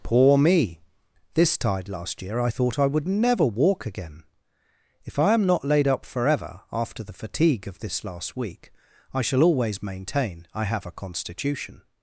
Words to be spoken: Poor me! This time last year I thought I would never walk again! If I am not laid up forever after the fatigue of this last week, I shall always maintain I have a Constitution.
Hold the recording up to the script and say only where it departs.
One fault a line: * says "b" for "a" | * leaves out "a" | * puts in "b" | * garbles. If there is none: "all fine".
* says "tide" for "time"